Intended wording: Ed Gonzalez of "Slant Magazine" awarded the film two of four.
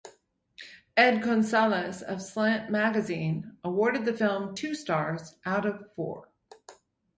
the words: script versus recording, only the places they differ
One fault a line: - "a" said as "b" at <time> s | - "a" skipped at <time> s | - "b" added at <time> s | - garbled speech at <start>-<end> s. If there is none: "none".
- "stars out" added at 4.7 s